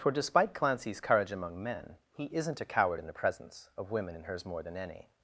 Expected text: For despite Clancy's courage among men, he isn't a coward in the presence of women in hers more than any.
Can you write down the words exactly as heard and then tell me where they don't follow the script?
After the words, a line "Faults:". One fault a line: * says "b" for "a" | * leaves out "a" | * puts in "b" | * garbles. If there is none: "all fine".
For despite Clancy's courage among men, he isn't a coward in the presence of women in hers more than any.
Faults:
all fine